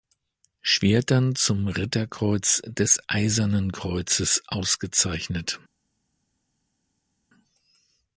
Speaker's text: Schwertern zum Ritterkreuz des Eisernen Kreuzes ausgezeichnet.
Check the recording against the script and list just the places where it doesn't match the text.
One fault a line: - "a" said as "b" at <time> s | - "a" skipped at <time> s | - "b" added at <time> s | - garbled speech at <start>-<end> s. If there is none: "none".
none